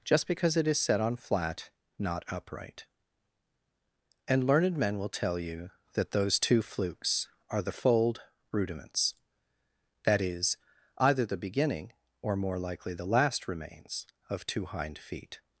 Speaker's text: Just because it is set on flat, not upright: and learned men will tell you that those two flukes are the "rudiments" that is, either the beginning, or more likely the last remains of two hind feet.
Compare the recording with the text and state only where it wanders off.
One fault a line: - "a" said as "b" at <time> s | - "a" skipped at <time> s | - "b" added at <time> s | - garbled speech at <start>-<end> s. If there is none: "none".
- "fold" added at 7.7 s